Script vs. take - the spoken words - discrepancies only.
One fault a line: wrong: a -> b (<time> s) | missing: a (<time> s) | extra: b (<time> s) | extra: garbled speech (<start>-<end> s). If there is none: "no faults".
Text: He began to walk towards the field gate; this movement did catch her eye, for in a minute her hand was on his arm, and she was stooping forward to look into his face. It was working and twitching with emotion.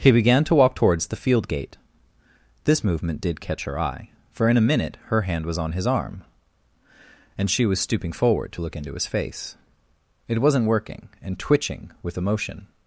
wrong: was -> wasn't (10.4 s)